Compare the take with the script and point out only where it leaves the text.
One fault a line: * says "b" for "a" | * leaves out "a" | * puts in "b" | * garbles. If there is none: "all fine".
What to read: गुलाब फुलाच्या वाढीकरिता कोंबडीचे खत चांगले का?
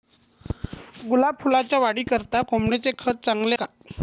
all fine